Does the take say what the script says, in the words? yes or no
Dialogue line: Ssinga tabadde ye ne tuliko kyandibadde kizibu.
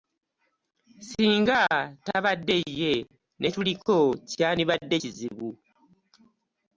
yes